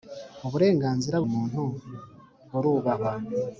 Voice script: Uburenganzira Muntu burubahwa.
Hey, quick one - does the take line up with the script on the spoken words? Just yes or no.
yes